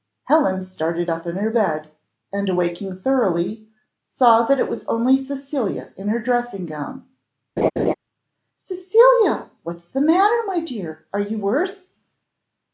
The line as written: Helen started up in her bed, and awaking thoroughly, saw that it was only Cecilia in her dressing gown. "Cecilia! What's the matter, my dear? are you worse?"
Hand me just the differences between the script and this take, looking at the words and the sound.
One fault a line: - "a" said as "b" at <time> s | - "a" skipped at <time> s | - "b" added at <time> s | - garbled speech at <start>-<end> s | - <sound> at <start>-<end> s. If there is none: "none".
- laugh at 7.6-7.9 s